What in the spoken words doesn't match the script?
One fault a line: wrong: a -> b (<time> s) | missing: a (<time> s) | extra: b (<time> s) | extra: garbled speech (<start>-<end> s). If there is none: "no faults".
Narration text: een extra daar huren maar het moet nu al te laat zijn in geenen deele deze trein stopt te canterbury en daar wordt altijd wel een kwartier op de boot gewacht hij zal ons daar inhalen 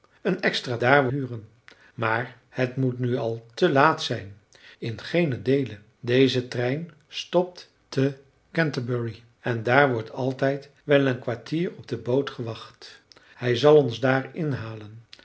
no faults